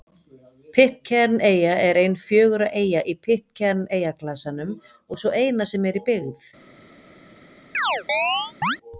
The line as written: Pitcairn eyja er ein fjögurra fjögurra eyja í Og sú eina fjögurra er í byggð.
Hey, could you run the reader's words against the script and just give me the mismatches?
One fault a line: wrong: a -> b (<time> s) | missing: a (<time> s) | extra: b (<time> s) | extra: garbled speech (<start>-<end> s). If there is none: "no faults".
missing: fjögurra (2.7 s)
extra: Pitcairn eyjaklasanum (3.3 s)
wrong: fjögurra -> sem (5.7 s)